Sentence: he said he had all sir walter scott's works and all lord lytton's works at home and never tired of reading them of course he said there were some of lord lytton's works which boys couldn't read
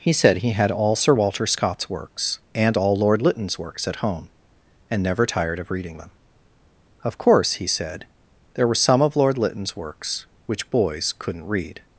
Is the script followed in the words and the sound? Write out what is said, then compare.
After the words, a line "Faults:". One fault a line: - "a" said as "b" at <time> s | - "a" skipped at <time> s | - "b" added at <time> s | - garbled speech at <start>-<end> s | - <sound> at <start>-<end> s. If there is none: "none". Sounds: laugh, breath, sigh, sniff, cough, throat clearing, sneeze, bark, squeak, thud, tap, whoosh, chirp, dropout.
he said he had all sir walter scott's works and all lord lytton's works at home and never tired of reading them of course he said there were some of lord lytton's works which boys couldn't read
Faults:
none